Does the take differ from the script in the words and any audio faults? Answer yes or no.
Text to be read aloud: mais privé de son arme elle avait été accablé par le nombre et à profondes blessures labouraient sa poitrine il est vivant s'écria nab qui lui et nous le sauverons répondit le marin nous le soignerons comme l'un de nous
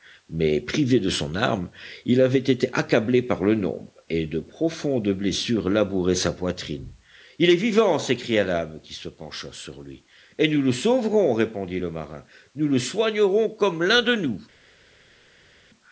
yes